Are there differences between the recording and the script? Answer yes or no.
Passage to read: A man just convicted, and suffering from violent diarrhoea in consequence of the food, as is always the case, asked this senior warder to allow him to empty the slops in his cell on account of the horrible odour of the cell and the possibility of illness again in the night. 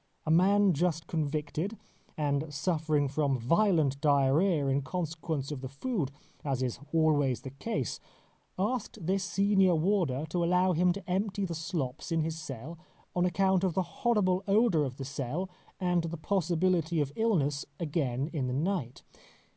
no